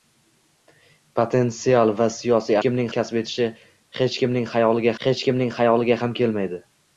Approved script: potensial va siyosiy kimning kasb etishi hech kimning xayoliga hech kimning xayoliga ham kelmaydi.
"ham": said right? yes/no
yes